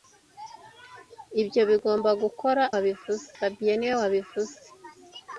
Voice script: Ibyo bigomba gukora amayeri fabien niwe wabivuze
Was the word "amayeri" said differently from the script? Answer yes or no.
yes